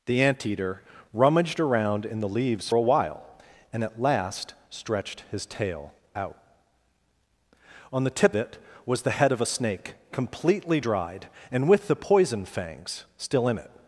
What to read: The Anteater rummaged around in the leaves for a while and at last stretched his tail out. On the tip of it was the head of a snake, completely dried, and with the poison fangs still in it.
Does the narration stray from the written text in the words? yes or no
yes